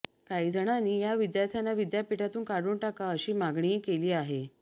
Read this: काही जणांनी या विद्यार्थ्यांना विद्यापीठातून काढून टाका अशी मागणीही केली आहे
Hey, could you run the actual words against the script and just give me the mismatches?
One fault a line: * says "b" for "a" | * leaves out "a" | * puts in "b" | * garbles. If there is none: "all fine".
all fine